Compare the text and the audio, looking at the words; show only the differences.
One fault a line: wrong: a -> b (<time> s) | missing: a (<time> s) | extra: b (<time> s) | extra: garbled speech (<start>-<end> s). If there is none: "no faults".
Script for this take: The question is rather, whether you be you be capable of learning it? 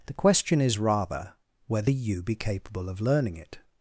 missing: you be (2.3 s)